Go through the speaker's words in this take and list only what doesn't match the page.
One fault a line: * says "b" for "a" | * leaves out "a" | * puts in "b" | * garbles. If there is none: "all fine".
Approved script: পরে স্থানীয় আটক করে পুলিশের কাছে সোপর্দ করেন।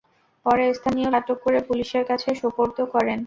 all fine